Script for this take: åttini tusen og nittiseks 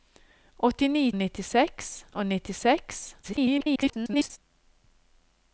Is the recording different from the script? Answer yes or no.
yes